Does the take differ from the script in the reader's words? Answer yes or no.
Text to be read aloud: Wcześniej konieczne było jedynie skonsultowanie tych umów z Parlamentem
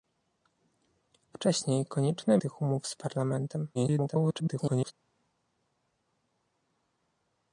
yes